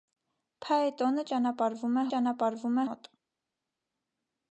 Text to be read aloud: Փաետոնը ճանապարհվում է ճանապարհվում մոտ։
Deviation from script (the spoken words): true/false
false